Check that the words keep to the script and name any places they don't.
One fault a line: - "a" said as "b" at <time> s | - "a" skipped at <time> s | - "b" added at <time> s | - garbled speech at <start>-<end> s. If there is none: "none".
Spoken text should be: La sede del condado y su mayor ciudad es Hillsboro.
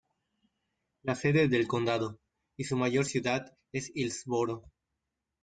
none